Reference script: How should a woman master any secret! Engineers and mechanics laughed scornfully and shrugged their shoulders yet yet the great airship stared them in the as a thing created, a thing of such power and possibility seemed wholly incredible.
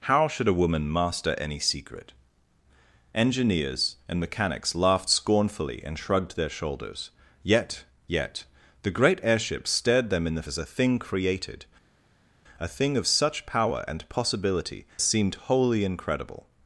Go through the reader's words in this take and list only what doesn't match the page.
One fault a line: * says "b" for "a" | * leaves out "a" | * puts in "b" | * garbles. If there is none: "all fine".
all fine